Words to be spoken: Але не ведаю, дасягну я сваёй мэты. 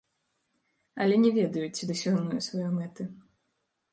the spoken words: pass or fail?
fail